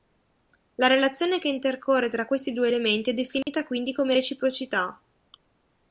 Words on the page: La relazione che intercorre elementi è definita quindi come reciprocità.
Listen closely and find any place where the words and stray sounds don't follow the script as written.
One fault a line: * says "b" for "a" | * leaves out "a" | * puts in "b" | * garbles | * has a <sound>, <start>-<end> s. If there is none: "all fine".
* puts in "tra questi due"
* has a dropout, 3.4-3.5 s